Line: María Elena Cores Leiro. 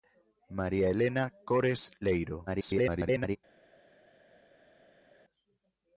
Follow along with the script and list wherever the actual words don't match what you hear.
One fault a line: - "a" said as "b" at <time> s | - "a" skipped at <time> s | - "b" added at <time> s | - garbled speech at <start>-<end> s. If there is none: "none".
- garbled speech at 2.5-3.4 s